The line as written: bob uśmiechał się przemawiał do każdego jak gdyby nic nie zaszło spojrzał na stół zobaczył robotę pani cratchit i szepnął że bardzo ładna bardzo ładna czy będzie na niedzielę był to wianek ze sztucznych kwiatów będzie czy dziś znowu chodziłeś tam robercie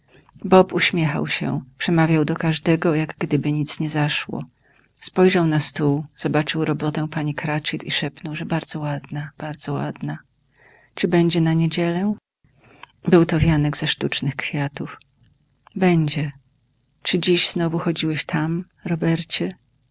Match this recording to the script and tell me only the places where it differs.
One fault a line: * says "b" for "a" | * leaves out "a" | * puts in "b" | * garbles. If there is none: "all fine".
all fine